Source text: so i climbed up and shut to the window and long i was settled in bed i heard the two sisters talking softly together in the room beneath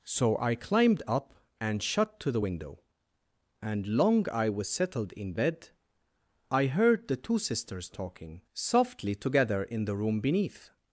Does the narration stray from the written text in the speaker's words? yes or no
no